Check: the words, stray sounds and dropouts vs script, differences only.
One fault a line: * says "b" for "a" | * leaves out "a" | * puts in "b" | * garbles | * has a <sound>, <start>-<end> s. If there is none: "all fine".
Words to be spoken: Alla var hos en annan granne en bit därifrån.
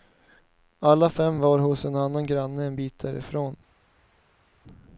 * puts in "fem"